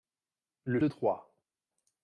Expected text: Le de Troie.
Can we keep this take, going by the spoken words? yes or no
yes